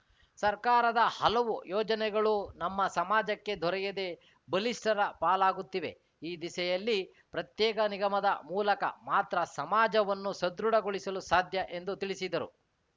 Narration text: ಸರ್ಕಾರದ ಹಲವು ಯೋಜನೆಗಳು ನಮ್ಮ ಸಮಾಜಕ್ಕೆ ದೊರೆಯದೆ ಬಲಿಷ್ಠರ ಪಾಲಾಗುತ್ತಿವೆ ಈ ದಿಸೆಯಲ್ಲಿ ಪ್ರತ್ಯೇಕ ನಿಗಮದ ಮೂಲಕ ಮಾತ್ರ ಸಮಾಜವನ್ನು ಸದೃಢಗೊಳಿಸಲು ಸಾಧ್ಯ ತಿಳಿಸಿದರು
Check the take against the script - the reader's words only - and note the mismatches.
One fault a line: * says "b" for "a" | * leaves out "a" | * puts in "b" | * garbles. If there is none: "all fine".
* puts in "ಎಂದು"